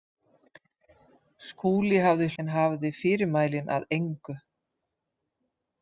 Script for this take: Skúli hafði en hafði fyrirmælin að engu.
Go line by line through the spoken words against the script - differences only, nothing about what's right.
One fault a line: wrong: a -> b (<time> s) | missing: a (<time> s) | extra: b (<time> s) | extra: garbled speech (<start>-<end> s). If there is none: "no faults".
no faults